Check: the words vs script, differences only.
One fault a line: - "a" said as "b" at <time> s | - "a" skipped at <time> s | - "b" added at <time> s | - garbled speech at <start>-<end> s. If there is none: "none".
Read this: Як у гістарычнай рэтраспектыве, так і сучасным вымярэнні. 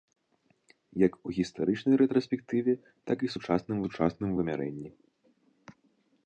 - "сучасным" added at 3.8 s